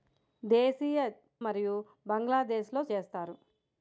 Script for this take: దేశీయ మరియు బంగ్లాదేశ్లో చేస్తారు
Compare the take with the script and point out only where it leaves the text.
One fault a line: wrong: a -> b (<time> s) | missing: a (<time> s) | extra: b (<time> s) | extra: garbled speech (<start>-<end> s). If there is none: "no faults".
no faults